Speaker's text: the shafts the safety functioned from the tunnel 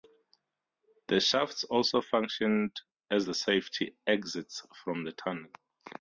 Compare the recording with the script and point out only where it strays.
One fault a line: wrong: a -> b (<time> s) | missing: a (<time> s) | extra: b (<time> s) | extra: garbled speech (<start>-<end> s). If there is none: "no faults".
extra: also functioned as (1.6 s)
wrong: functioned -> exits (4.1 s)